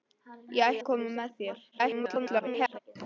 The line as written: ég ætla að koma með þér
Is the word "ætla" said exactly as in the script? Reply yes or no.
no